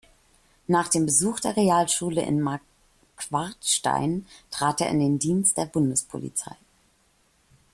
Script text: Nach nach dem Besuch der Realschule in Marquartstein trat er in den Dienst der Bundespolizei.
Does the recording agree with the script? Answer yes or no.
no